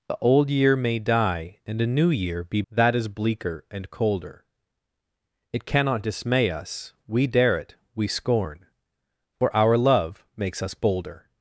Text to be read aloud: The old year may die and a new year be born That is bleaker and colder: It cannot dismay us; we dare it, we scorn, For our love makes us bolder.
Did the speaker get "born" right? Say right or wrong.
wrong